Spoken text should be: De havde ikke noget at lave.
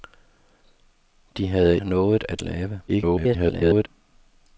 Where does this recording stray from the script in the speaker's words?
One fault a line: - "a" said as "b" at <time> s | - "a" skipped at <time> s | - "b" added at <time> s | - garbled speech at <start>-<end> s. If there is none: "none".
- "ikke" skipped at 1.8 s
- garbled speech at 2.9-3.9 s